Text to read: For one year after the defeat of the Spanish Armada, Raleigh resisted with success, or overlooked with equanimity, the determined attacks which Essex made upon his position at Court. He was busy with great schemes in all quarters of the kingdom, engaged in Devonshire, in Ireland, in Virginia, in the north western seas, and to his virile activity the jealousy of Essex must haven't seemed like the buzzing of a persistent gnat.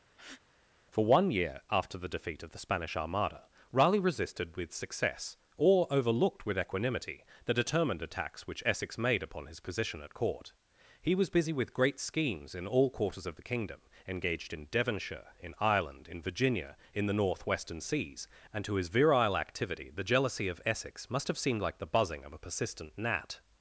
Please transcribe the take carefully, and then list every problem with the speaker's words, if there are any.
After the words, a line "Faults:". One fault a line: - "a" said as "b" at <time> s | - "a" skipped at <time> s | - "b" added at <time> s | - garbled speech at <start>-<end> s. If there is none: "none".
For one year after the defeat of the Spanish Armada, Raleigh resisted with success, or overlooked with equanimity, the determined attacks which Essex made upon his position at Court. He was busy with great schemes in all quarters of the kingdom, engaged in Devonshire, in Ireland, in Virginia, in the north western seas, and to his virile activity the jealousy of Essex must have seemed like the buzzing of a persistent gnat.
Faults:
- "haven't" said as "have" at 21.3 s